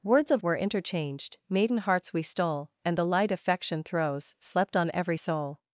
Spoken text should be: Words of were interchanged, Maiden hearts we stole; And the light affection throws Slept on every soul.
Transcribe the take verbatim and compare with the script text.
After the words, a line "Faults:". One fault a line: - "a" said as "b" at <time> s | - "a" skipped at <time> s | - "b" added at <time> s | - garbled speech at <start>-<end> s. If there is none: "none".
Words of were interchanged, Maiden hearts we stole; And the light affection throws Slept on every soul.
Faults:
none